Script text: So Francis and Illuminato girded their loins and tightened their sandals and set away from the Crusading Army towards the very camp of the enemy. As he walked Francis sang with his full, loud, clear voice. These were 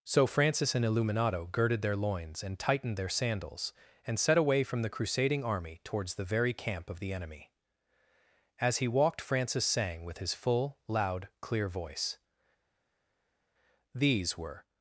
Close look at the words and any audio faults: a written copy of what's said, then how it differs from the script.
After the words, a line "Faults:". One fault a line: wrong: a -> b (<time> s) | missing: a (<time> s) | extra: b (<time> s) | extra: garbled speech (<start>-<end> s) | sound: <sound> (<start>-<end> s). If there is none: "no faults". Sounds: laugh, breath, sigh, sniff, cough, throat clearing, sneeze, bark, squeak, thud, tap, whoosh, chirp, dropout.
So Francis and Illuminato girded their loins and tightened their sandals and set away from the Crusading Army towards the very camp of the enemy. As he walked Francis sang with his full, loud, clear voice. These were
Faults:
no faults